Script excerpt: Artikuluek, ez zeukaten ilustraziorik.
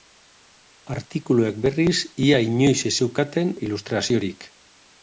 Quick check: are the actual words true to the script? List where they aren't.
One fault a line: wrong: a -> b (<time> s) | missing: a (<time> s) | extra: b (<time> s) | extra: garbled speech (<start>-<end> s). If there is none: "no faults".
extra: berriz ia inoiz (1.7 s)